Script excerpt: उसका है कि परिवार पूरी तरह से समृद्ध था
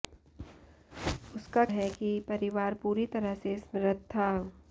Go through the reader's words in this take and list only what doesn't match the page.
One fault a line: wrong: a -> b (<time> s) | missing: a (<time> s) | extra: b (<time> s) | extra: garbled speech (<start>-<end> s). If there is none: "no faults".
no faults